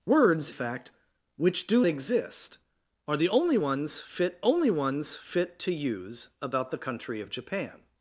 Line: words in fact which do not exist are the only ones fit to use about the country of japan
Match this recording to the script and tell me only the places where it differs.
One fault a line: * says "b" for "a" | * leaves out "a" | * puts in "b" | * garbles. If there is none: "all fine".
* leaves out "in"
* leaves out "not"
* puts in "only ones fit"